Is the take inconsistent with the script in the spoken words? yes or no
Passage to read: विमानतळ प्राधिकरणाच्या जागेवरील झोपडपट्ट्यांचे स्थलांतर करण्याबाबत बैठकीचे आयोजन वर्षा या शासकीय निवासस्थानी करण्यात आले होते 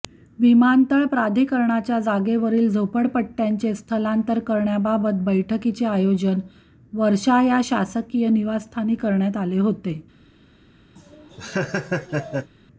no